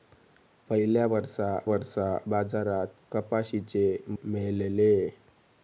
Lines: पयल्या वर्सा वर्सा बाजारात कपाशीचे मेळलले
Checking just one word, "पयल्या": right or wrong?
right